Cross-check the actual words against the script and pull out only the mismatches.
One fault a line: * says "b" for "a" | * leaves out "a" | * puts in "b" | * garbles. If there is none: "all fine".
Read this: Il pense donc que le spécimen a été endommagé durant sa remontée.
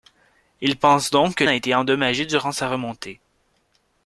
* leaves out "le spécimen"